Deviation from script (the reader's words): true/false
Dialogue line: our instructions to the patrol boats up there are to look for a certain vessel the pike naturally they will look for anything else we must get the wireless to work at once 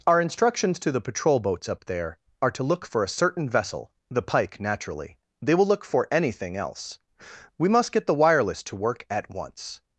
false